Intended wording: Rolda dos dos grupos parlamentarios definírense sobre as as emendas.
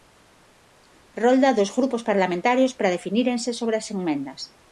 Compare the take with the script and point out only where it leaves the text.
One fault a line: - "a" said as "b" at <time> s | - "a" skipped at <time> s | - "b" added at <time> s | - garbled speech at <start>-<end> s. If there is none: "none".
- "dos" skipped at 1.8 s
- "para" added at 2.7 s
- "as" skipped at 3.9 s